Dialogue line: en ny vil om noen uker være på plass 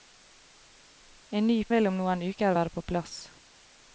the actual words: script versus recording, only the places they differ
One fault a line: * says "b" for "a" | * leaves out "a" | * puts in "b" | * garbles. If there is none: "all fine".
all fine